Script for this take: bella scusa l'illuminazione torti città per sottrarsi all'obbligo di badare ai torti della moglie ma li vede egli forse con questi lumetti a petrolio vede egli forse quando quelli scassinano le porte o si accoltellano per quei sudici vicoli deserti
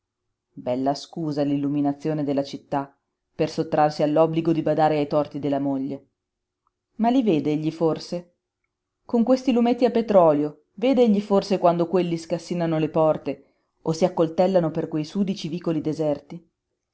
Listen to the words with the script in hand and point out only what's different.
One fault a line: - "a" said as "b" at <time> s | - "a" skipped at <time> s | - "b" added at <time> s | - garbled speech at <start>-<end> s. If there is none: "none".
- "torti" said as "della" at 2.2 s